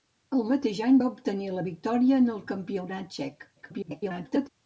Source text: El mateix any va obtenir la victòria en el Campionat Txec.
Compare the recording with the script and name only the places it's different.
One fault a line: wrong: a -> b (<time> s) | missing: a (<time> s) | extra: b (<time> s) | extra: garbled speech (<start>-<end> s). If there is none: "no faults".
extra: garbled speech (3.6-4.5 s)